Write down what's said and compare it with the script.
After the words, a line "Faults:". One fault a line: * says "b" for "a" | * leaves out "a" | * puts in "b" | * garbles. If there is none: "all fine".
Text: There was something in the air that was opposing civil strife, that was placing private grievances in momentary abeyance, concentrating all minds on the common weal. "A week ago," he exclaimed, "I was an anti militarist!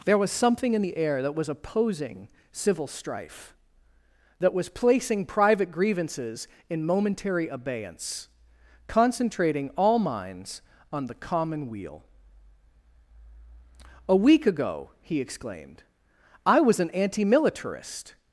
There was something in the air that was opposing civil strife, that was placing private grievances in momentary abeyance, concentrating all minds on the common weal. "A week ago," he exclaimed, "I was an anti militarist!
Faults:
all fine